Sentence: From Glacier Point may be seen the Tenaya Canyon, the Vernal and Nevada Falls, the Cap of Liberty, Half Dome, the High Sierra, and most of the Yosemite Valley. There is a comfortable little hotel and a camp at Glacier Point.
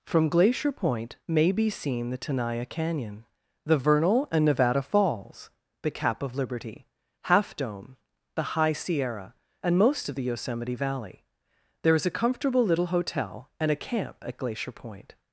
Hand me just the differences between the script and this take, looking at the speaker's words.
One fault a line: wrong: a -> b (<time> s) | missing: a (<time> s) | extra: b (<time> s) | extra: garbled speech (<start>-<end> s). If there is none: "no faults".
no faults